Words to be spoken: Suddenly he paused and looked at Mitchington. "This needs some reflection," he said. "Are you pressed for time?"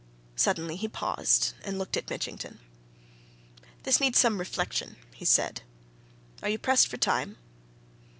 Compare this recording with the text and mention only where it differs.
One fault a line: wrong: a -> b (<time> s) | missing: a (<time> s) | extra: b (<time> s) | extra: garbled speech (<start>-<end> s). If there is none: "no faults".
no faults